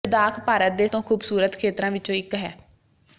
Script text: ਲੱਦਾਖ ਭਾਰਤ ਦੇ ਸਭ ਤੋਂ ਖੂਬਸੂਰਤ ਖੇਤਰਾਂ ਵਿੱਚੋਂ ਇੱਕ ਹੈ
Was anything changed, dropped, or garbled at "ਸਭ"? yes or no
yes